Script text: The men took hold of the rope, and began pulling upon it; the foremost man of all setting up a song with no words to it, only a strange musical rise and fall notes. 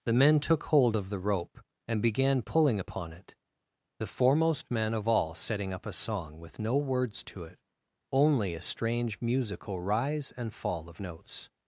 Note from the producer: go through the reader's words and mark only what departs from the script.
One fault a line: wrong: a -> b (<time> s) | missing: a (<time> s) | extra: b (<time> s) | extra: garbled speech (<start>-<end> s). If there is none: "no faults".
extra: of (10.9 s)